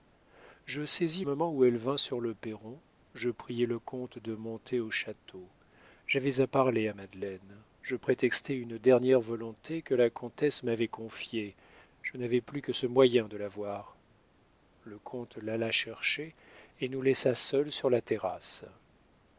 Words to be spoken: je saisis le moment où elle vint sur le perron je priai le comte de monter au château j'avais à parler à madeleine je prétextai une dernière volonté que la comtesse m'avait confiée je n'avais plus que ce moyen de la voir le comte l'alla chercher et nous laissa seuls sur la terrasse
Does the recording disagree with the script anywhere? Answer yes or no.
yes